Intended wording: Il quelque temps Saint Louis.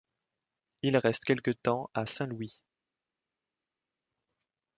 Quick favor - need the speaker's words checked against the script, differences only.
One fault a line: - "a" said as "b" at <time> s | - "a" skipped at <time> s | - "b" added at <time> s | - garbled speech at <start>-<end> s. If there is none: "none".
- "reste" added at 1.0 s
- "à" added at 1.9 s